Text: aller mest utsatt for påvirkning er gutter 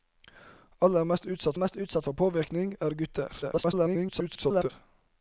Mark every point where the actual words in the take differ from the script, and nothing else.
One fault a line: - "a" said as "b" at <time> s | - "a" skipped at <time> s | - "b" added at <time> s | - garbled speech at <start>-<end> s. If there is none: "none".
- "mest utsatt" added at 1.5 s
- garbled speech at 3.4-4.7 s